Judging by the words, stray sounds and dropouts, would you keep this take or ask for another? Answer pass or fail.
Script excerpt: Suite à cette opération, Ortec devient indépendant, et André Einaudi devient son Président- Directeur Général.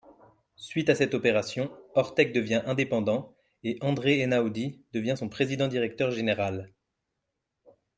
pass